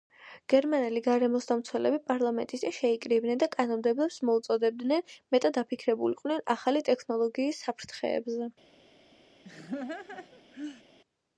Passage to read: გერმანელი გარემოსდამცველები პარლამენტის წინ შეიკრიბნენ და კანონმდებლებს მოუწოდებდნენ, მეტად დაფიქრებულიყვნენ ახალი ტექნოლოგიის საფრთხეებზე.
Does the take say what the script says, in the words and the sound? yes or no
no